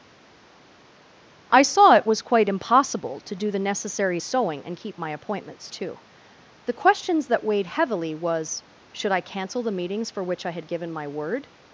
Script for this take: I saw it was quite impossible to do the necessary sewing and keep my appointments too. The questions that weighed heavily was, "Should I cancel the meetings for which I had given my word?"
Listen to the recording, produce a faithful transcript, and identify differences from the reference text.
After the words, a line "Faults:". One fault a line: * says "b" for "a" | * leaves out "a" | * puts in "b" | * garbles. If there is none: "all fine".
I saw it was quite impossible to do the necessary sewing and keep my appointments too. The questions that weighed heavily was, "Should I cancel the meetings for which I had given my word?"
Faults:
all fine